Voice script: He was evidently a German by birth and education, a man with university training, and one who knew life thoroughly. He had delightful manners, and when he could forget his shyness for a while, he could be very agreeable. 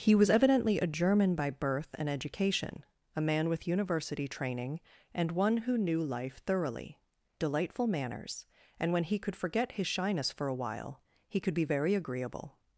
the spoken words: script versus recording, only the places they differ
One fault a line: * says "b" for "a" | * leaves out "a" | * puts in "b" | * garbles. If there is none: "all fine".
* leaves out "He had"